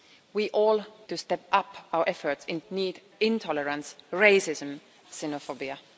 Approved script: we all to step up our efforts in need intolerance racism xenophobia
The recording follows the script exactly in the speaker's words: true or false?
true